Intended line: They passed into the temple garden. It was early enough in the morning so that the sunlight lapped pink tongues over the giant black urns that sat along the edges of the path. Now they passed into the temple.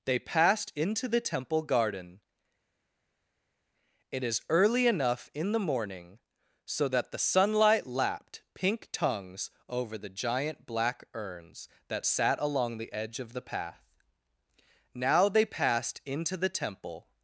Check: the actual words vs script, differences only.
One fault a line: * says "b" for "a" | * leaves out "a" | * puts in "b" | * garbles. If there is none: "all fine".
* says "is" for "was"
* says "edge" for "edges"